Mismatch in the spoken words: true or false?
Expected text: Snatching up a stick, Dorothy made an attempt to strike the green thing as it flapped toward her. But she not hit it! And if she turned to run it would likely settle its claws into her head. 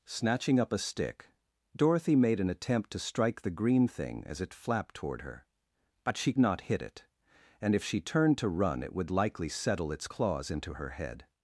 false